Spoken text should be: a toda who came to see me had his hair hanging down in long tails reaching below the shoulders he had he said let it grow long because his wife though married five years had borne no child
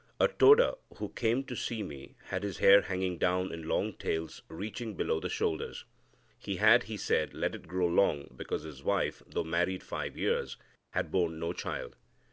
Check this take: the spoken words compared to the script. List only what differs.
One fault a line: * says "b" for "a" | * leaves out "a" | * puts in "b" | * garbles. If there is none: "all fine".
all fine